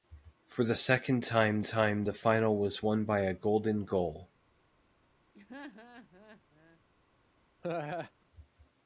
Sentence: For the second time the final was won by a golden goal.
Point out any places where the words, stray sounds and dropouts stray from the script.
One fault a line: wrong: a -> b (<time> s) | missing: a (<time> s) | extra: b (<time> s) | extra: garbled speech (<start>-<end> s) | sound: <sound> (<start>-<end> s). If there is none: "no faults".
extra: time (1.6 s)
sound: laugh (5.3-6.8 s)
sound: laugh (7.6-8.1 s)